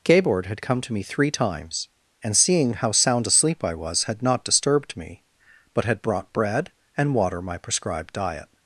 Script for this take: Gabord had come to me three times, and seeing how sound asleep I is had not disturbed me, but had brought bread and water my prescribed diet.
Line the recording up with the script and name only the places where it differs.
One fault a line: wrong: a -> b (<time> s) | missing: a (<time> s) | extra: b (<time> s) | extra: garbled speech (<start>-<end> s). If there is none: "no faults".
wrong: is -> was (3.7 s)